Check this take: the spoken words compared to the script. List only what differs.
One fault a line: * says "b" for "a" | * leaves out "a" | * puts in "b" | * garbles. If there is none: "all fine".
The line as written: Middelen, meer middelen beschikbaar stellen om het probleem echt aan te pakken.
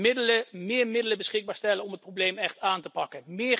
all fine